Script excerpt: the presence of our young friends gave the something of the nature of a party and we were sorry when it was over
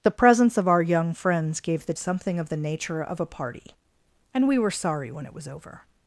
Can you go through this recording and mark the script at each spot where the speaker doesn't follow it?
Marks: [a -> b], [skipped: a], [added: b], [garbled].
the presence of our young friends gave the something of the nature of a party and we were sorry when it was over